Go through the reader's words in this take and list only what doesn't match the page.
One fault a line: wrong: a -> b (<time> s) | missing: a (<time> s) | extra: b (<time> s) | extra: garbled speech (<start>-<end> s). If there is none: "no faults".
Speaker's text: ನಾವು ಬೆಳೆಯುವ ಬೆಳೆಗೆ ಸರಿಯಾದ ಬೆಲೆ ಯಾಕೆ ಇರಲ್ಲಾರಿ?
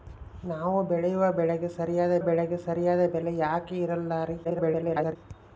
extra: ಬೆಳೆಗೆ ಸರಿಯಾದ (2.2 s)
extra: garbled speech (4.4-5.2 s)